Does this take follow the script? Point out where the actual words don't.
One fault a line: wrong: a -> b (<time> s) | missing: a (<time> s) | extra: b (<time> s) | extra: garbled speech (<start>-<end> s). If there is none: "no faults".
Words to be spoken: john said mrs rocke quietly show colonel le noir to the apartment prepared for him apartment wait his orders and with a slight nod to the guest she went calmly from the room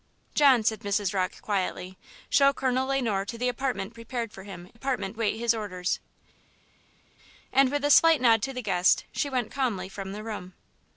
no faults